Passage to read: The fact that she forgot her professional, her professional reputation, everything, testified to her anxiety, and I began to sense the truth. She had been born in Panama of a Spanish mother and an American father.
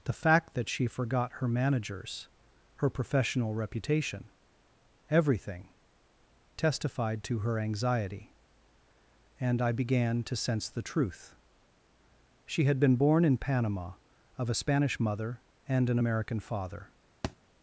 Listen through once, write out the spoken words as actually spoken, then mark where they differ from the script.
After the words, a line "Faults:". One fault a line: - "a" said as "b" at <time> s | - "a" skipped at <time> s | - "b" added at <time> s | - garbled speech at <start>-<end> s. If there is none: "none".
The fact that she forgot her managers, her professional reputation, everything, testified to her anxiety, and I began to sense the truth. She had been born in Panama of a Spanish mother and an American father.
Faults:
- "professional" said as "managers" at 1.5 s